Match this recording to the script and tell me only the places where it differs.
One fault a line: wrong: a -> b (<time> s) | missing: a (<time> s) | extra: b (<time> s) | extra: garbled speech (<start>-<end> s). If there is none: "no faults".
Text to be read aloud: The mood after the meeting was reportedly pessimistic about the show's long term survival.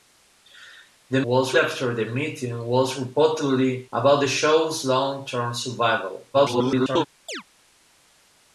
wrong: mood -> was (1.2 s)
missing: pessimistic (3.9 s)
extra: garbled speech (6.3-7.1 s)